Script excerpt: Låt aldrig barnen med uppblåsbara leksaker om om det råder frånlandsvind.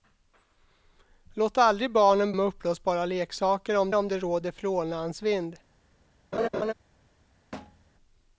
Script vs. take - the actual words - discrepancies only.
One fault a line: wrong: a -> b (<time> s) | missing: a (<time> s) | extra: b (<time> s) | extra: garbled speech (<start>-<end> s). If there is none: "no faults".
no faults